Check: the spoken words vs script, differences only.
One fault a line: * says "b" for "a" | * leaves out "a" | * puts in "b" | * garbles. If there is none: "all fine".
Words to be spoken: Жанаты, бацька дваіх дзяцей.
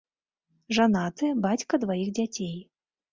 all fine